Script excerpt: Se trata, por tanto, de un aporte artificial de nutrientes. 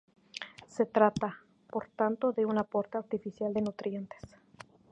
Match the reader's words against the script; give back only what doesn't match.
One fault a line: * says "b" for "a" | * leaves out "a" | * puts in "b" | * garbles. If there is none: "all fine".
all fine